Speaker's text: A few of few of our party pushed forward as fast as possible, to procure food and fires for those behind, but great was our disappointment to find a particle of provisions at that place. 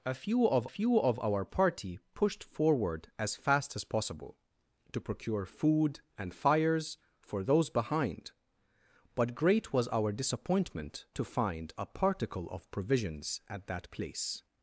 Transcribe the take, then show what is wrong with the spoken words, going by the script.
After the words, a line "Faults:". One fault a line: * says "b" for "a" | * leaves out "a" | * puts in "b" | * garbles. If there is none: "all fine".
A few of few of our party pushed forward as fast as possible, to procure food and fires for those behind, but great was our disappointment to find a particle of provisions at that place.
Faults:
all fine